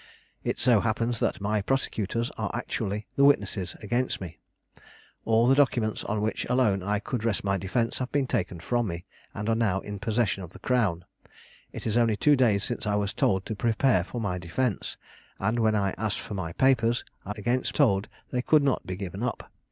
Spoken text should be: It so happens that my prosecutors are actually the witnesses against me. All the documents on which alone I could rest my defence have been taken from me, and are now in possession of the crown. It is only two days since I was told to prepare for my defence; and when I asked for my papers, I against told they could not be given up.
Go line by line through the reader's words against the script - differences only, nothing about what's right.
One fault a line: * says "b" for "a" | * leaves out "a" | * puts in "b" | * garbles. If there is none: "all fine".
all fine